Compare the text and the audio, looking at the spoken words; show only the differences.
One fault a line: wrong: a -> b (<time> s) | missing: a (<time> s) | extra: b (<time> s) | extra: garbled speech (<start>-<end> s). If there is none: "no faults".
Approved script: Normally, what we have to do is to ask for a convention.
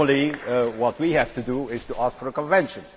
no faults